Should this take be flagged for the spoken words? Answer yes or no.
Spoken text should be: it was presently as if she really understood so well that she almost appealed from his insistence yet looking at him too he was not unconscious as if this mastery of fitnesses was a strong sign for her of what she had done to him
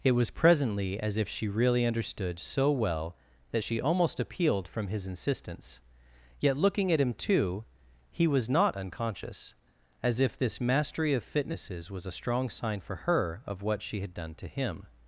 no